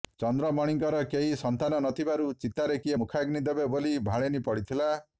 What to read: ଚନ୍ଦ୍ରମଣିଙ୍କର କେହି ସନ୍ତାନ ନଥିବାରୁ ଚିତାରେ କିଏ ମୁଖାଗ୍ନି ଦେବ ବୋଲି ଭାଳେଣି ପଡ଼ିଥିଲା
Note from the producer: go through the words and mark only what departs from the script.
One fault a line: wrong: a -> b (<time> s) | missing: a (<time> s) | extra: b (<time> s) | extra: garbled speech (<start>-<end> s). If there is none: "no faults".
no faults